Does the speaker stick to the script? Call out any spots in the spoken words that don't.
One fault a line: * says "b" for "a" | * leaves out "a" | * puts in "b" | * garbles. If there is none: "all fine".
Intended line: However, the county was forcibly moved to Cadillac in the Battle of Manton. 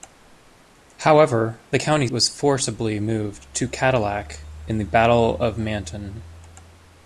all fine